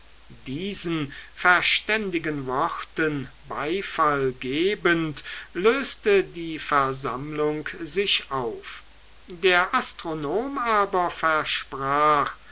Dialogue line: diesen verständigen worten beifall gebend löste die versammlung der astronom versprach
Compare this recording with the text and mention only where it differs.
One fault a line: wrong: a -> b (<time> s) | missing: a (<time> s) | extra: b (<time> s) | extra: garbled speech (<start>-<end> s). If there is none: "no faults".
extra: sich auf (7.8 s)
extra: aber (10.6 s)